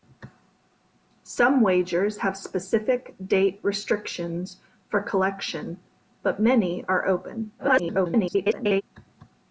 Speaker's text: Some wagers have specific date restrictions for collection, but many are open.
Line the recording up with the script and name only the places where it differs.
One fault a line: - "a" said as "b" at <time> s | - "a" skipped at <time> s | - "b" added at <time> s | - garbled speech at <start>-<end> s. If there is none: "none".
- garbled speech at 7.6-8.8 s